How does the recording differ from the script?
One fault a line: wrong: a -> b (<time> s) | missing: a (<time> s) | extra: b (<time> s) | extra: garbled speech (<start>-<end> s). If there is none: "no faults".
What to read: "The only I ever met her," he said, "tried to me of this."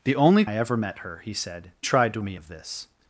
no faults